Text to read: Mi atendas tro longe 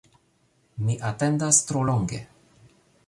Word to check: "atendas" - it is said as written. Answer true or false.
true